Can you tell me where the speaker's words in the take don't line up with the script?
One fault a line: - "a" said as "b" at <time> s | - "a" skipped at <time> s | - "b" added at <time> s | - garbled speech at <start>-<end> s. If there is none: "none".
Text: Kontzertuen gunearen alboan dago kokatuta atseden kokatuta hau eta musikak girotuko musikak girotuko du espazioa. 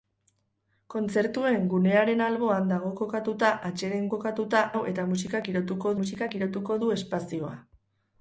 none